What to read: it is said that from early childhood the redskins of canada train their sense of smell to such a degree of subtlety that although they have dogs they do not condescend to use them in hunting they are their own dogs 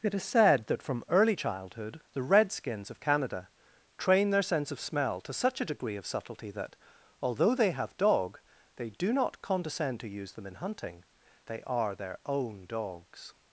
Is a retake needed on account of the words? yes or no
yes